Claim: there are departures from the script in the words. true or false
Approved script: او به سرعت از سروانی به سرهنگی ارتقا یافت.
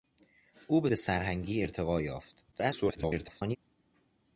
true